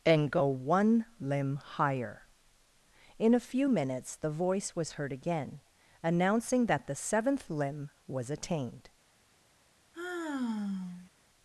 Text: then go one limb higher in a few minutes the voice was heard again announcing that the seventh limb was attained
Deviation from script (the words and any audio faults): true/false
true